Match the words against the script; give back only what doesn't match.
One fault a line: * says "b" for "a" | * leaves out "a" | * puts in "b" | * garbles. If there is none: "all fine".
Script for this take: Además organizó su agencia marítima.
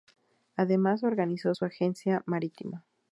all fine